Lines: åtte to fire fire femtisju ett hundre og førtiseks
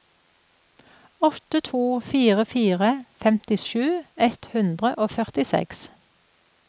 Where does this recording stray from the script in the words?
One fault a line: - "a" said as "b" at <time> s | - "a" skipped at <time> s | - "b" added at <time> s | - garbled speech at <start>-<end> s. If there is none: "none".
none